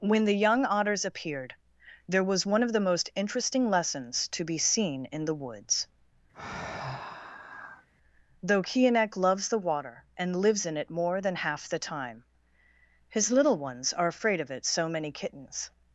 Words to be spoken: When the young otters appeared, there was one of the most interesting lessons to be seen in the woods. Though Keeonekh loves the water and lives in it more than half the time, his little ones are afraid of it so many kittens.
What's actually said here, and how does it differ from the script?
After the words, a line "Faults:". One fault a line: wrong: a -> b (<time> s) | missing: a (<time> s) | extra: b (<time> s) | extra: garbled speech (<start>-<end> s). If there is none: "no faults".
When the young otters appeared, there was one of the most interesting lessons to be seen in the woods. Though Keeonekh loves the water and lives in it more than half the time, his little ones are afraid of it so many kittens.
Faults:
no faults